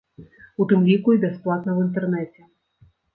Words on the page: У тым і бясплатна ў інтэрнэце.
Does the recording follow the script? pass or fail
fail